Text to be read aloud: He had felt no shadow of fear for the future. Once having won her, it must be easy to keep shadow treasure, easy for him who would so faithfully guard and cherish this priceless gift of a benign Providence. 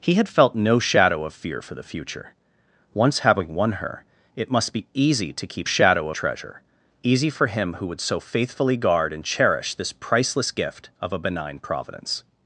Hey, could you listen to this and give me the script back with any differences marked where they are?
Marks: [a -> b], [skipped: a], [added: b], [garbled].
He had felt no shadow of fear for the future. Once having won her, it must be easy to keep shadow treasure, easy for him who would so faithfully guard and cherish this priceless gift of a benign Providence.